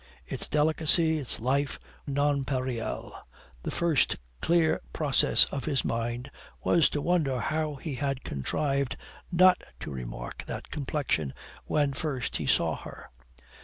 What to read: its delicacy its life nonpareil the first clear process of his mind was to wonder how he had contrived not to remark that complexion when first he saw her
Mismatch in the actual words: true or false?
false